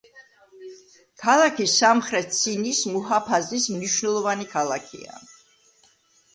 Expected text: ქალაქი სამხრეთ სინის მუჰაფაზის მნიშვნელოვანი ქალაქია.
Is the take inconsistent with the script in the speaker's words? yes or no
no